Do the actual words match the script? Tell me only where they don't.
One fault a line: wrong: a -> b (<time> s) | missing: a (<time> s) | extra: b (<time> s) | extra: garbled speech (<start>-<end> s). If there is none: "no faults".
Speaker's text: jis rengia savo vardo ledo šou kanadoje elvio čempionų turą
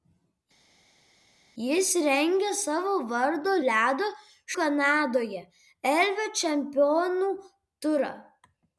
missing: šou (4.1 s)